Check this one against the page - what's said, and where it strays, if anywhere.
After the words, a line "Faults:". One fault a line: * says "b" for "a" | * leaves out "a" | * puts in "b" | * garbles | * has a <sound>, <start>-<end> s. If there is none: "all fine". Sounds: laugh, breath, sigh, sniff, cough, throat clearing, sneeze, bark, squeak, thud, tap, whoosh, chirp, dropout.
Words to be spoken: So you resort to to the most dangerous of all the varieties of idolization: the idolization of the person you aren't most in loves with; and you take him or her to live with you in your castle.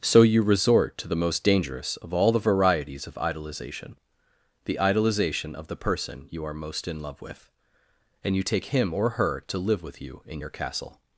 So you resort to the most dangerous of all the varieties of idolization: the idolization of the person you are most in love with; and you take him or her to live with you in your castle.
Faults:
* leaves out "to"
* says "are" for "aren't"
* says "love" for "loves"